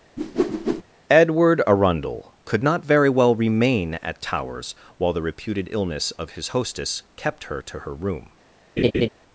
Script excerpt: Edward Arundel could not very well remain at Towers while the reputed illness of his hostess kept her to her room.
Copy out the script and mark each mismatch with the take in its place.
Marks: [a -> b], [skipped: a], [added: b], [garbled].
Edward Arundel could not very well remain at Towers while the reputed illness of his hostess kept her to her room.